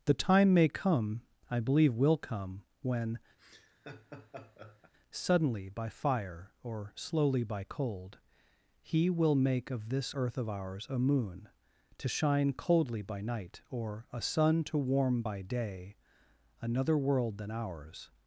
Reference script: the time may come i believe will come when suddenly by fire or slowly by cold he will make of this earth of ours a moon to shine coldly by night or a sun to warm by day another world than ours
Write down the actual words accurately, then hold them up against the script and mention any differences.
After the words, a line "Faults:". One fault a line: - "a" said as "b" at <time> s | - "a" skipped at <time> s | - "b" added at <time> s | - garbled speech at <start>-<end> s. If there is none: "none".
the time may come i believe will come when suddenly by fire or slowly by cold he will make of this earth of ours a moon to shine coldly by night or a sun to warm by day another world than ours
Faults:
none